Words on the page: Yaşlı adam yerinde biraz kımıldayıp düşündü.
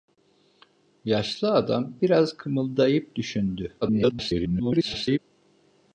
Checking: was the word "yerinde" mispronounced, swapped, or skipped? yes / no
yes